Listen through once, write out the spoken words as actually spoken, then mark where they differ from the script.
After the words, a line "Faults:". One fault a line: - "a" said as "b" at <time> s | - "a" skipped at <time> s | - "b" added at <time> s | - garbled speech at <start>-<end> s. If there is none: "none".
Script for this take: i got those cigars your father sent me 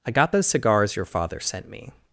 i got those cigars your father sent me
Faults:
none